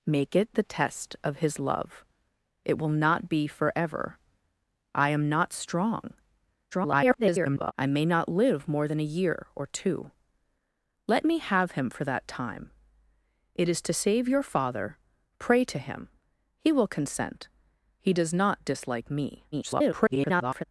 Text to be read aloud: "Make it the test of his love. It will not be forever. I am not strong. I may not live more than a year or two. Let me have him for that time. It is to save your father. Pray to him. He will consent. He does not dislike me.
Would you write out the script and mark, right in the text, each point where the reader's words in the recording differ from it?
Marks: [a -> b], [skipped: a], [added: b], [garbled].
"Make it the test of his love. It will not be forever. I am not strong. [garbled] I may not live more than a year or two. Let me have him for that time. It is to save your father. Pray to him. He will consent. He does not dislike me. [garbled]